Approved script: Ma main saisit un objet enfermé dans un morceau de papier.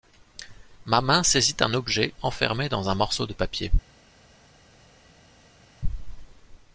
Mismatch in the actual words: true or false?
false